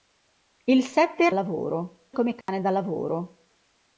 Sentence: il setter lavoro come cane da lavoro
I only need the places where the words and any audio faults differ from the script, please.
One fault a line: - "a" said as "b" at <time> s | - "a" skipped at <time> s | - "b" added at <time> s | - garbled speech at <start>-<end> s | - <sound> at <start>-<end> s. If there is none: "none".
- dropout at 2.4-2.5 s